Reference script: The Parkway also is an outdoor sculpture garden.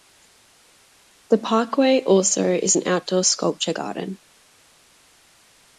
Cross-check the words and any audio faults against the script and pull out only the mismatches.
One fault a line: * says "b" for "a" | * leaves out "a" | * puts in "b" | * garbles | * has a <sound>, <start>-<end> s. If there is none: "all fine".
all fine